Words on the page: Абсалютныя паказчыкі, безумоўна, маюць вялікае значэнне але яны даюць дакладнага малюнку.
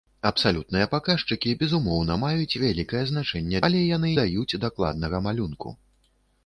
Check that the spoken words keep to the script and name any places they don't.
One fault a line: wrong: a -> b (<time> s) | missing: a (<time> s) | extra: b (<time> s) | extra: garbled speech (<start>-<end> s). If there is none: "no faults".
no faults